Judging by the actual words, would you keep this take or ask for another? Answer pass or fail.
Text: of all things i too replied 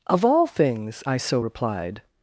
fail